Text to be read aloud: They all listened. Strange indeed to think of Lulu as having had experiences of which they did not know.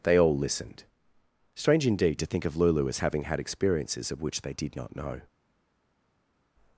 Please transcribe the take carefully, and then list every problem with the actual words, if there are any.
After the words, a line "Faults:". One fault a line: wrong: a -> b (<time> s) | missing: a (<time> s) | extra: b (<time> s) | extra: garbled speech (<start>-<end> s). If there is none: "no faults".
They all listened. Strange indeed to think of Lulu as having had experiences of which they did not know.
Faults:
no faults